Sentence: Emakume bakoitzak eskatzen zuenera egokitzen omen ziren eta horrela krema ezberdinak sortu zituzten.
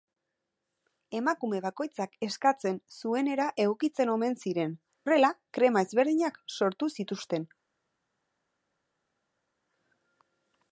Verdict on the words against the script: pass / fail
fail